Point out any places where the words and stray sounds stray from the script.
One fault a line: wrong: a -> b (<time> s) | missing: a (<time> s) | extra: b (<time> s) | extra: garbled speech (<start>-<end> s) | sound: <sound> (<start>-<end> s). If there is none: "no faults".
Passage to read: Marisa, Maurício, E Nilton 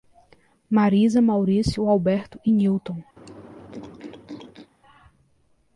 extra: Alberto (1.9 s)
sound: throat clearing (3.2-4.7 s)